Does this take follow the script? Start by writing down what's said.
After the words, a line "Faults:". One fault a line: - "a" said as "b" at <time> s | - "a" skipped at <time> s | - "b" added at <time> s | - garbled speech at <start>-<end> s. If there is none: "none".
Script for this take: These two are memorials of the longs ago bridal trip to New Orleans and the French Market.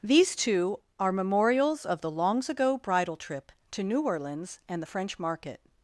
These two are memorials of the longs ago bridal trip to New Orleans and the French Market.
Faults:
none